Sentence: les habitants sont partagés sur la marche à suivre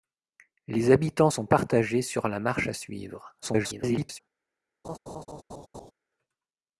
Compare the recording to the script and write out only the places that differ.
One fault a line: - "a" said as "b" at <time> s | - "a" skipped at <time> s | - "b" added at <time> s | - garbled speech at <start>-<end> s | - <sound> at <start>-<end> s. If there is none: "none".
- garbled speech at 3.4-4.2 s
- laugh at 4.8-5.9 s